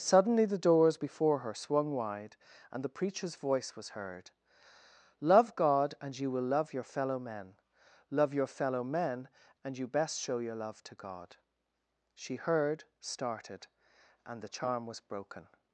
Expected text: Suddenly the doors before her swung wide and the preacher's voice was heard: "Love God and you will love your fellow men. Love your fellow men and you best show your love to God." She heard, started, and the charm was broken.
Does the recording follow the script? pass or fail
pass